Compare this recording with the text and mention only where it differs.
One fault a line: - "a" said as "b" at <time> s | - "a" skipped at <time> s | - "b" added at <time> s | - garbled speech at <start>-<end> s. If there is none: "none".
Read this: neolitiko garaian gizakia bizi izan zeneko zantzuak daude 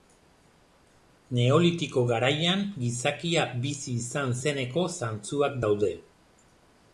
none